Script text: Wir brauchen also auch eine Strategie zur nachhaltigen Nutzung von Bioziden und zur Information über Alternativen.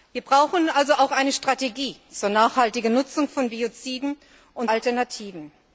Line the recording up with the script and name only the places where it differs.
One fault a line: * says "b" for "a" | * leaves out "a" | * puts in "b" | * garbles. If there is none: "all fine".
* leaves out "zur Information über"